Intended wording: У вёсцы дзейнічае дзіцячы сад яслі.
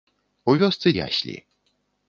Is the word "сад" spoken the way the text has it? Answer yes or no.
no